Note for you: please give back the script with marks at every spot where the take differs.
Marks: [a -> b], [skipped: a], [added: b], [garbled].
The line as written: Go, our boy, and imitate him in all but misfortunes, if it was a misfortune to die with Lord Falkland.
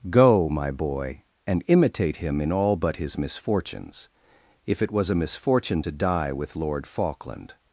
Go, [our -> my] boy, and imitate him in all but [added: his] misfortunes, if it was a misfortune to die with Lord Falkland.